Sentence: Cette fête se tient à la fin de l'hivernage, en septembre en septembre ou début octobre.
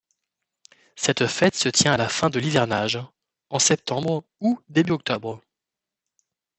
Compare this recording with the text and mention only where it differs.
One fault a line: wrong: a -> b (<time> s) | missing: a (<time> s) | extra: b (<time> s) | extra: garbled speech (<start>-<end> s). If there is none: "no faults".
missing: en septembre (4.2 s)